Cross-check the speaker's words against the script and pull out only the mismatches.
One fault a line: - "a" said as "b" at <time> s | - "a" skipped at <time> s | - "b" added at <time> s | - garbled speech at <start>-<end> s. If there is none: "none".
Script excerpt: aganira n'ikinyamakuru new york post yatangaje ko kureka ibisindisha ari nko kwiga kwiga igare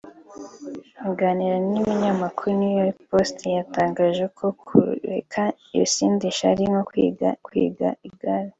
none